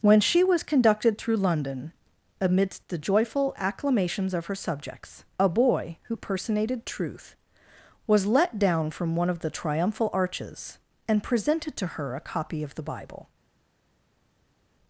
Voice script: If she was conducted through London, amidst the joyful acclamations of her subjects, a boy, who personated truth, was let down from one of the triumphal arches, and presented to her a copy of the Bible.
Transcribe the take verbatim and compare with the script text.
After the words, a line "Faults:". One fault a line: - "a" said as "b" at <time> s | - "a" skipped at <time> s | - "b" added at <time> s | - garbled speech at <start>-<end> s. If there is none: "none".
When she was conducted through London, amidst the joyful acclamations of her subjects, a boy, who personated truth, was let down from one of the triumphal arches, and presented to her a copy of the Bible.
Faults:
- "If" said as "When" at 0.0 s